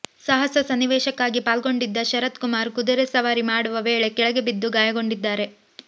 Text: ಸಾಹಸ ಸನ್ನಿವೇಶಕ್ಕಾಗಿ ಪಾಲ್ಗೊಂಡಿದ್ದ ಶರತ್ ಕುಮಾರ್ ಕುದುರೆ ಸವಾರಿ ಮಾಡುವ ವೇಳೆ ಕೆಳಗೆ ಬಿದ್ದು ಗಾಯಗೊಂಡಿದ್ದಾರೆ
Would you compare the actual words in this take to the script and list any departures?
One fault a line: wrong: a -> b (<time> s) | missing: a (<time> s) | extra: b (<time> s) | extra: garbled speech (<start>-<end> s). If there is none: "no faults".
no faults